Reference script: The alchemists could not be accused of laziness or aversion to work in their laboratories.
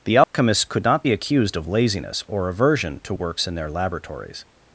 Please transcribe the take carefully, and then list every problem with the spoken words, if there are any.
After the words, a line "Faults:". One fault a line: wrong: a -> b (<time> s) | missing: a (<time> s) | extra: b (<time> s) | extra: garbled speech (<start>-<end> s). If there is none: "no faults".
The alchemists could not be accused of laziness or aversion to works in their laboratories.
Faults:
wrong: work -> works (3.1 s)